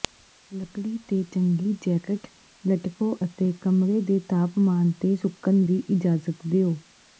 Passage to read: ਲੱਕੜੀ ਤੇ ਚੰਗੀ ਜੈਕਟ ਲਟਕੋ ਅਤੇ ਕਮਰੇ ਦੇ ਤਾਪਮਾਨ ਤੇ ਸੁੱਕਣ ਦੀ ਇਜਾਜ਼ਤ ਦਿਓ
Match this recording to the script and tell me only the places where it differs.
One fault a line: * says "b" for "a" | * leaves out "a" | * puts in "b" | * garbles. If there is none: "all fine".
all fine